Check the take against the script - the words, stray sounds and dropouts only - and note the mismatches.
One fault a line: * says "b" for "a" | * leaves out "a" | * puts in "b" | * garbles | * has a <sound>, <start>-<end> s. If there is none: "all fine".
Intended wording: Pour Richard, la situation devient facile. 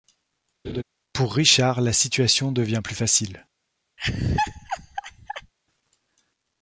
* has a laugh, 0.6-0.8 s
* puts in "plus"
* has a laugh, 4.0-5.5 s